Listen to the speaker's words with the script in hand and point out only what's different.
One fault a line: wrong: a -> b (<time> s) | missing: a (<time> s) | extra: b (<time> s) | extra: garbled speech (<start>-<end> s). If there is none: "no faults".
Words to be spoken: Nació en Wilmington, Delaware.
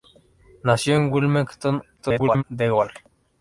extra: garbled speech (2.0-2.4 s)